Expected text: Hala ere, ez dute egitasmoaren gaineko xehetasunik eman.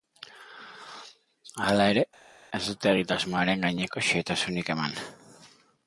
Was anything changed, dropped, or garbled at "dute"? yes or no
no